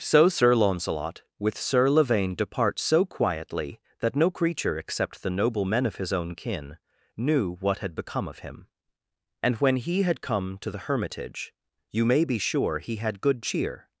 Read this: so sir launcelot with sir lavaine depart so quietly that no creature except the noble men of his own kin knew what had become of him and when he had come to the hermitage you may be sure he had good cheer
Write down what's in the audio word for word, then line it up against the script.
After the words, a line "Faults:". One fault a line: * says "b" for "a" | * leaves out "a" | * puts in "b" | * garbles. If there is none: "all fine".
so sir launcelot with sir lavaine depart so quietly that no creature except the noble men of his own kin knew what had become of him and when he had come to the hermitage you may be sure he had good cheer
Faults:
all fine